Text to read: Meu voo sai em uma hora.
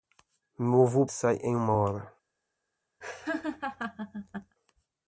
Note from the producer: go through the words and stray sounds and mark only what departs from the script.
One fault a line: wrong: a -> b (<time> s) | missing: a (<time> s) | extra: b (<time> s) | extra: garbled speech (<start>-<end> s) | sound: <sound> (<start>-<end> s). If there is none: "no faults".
sound: laugh (3.0-4.6 s)